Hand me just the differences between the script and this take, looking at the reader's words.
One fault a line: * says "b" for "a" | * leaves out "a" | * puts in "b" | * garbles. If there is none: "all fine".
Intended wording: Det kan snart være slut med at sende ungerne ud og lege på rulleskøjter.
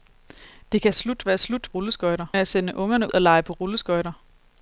* says "slut" for "snart"
* says "rulleskøjter" for "med"
* leaves out "ud"